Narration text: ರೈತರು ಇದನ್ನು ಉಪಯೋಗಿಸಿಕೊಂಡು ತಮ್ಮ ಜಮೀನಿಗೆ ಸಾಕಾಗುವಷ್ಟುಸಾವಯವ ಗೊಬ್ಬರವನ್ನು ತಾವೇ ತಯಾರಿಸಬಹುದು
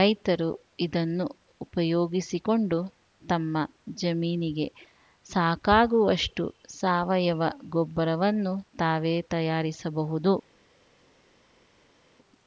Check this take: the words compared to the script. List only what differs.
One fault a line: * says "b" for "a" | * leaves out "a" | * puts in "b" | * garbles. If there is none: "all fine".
all fine